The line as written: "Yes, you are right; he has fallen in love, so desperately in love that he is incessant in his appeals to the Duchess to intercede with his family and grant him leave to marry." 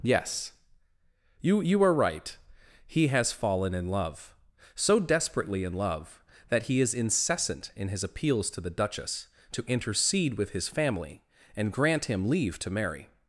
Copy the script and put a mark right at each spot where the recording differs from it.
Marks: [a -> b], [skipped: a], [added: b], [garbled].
"Yes, you [added: you] are right; he has fallen in love, so desperately in love that he is incessant in his appeals to the Duchess to intercede with his family and grant him leave to marry."